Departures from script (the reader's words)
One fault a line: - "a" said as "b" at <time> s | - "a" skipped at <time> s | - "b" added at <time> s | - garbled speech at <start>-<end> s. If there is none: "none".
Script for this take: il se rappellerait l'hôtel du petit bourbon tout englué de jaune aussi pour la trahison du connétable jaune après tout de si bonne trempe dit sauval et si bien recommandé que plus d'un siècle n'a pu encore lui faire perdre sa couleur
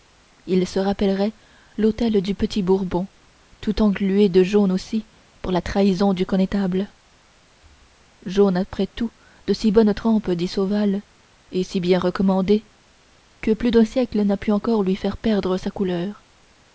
none